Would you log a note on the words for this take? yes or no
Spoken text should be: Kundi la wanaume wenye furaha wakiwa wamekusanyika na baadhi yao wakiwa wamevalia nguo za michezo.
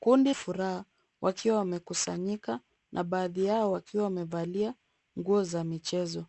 yes